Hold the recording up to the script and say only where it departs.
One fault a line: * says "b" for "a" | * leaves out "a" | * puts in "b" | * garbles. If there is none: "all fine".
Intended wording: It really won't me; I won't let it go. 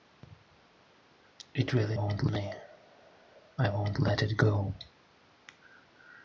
all fine